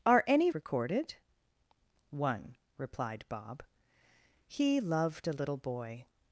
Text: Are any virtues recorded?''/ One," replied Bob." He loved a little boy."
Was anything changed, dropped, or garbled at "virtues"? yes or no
yes